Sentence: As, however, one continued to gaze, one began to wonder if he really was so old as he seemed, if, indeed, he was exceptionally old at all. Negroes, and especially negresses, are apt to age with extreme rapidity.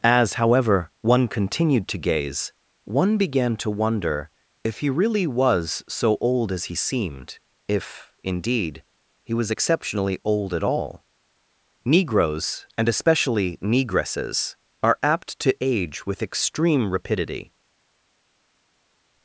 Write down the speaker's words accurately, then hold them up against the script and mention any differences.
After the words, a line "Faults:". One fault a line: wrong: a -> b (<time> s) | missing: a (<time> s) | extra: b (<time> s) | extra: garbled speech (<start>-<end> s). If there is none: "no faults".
As, however, one continued to gaze, one began to wonder if he really was so old as he seemed, if, indeed, he was exceptionally old at all. Negroes, and especially negresses, are apt to age with extreme rapidity.
Faults:
no faults